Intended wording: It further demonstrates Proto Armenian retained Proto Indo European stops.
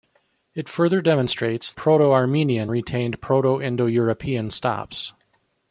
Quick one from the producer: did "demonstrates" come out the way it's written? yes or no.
yes